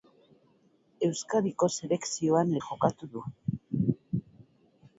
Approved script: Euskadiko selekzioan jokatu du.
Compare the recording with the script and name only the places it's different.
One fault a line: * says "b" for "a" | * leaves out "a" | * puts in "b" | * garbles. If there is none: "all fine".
all fine